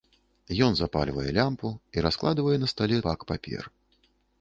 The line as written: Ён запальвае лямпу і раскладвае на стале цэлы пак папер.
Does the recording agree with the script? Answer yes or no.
no